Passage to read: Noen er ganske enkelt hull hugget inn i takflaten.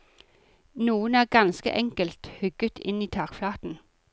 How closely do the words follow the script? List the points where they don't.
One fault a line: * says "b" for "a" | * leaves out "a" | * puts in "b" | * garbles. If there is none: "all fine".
* leaves out "hull"